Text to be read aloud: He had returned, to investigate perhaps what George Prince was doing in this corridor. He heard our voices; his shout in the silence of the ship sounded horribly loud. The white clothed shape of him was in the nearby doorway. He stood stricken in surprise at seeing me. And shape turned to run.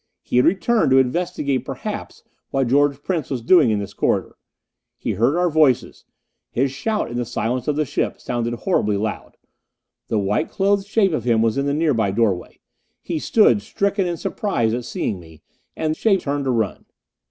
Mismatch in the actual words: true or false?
false